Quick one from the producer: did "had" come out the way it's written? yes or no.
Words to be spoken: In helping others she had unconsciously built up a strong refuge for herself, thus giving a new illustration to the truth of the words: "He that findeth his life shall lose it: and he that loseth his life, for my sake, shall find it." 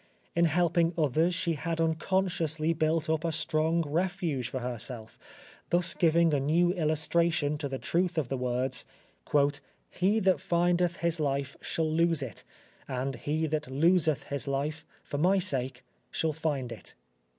yes